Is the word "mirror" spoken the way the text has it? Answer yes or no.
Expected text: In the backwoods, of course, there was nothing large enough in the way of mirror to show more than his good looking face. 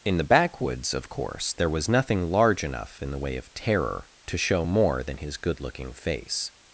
no